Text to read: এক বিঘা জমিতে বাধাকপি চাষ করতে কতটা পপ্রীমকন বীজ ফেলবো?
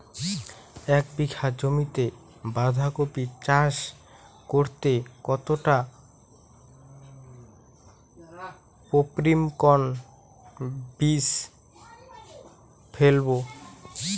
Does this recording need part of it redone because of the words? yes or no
no